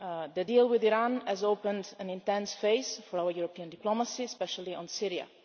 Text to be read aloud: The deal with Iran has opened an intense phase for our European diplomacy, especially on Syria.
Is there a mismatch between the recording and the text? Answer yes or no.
no